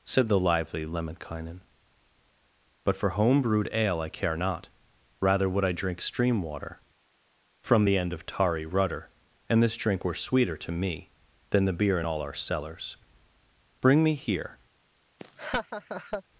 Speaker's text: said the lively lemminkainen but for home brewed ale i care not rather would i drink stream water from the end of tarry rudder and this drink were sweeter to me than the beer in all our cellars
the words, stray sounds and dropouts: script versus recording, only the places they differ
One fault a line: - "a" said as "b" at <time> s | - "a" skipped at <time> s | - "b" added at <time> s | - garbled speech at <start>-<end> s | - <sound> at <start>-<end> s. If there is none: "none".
- "bring me here" added at 13.8 s
- laugh at 15.2-16.2 s